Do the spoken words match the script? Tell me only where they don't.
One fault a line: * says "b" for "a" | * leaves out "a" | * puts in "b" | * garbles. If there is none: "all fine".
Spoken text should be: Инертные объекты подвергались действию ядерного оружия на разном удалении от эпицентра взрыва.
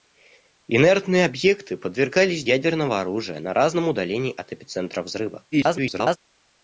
* leaves out "действию"
* garbles